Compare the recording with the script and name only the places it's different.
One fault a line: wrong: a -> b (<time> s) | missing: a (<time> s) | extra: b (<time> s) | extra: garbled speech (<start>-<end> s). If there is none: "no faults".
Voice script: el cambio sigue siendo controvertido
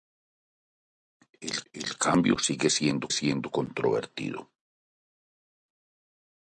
extra: el (1.7 s)
extra: siendo (3.1 s)